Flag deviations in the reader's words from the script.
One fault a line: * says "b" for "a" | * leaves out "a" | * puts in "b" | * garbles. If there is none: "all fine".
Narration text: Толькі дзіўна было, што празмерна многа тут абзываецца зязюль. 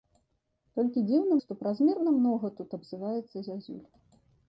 * leaves out "было"